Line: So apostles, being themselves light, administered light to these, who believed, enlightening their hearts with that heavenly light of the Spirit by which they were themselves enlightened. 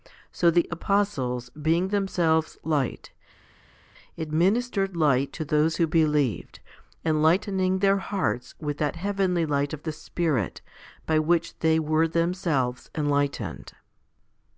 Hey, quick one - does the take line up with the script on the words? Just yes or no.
no